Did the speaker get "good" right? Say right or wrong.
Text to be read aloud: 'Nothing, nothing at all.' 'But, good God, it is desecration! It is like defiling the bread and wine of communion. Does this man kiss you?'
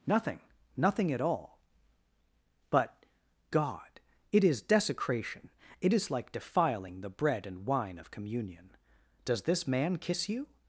wrong